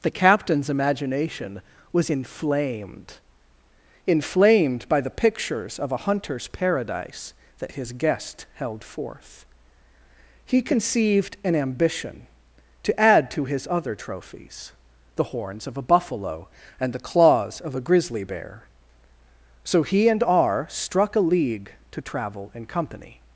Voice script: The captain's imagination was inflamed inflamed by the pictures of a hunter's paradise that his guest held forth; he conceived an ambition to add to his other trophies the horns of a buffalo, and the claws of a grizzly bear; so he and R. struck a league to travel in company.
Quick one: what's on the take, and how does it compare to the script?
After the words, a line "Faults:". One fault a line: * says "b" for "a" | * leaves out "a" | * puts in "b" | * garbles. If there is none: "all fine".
The captain's imagination was inflamed inflamed by the pictures of a hunter's paradise that his guest held forth; he conceived an ambition to add to his other trophies the horns of a buffalo, and the claws of a grizzly bear; so he and R. struck a league to travel in company.
Faults:
all fine